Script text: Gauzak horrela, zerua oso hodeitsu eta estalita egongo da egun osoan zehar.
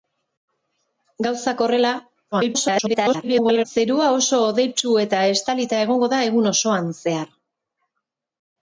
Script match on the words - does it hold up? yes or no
no